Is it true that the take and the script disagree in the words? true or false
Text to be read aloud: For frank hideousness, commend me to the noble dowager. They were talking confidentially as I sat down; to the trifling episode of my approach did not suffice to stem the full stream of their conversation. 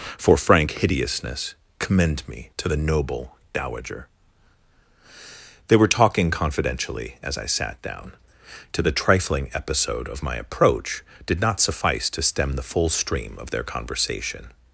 false